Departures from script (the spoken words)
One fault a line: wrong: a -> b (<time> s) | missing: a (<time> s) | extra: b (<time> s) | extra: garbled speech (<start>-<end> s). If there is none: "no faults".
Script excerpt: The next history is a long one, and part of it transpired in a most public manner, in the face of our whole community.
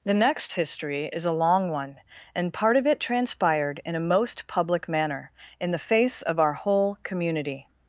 no faults